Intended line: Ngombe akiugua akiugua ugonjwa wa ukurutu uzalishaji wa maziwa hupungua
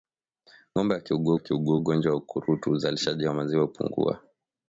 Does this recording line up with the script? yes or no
yes